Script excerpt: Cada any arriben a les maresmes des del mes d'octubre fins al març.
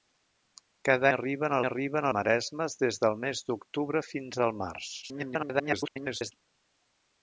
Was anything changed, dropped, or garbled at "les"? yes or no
yes